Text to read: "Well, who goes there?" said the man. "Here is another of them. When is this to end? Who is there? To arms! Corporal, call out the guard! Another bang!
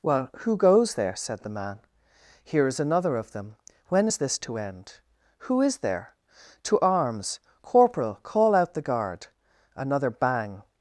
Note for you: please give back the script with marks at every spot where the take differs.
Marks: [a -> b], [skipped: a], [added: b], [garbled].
"Well, who goes there?" said the man. "Here is another of them. When is this to end? Who is there? To arms! Corporal, call out the guard! Another bang!